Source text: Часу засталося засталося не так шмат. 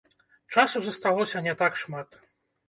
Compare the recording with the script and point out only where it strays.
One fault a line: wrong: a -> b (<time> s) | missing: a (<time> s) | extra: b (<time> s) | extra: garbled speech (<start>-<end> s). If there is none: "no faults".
missing: засталося (1.4 s)